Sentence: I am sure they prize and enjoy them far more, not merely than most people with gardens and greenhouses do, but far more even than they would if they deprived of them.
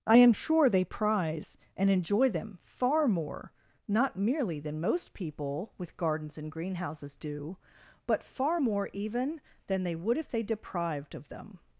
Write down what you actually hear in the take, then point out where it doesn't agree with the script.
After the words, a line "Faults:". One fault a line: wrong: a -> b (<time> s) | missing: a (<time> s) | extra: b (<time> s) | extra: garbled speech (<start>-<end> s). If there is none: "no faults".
I am sure they prize and enjoy them far more, not merely than most people with gardens and greenhouses do, but far more even than they would if they deprived of them.
Faults:
no faults